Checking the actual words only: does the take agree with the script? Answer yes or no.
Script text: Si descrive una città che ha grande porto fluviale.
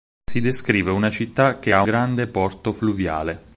yes